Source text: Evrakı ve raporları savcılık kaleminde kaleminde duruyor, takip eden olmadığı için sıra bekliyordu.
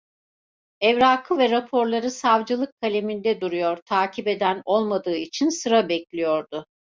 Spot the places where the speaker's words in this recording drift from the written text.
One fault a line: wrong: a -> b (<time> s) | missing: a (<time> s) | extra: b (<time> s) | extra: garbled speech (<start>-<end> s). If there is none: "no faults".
missing: kaleminde (3.4 s)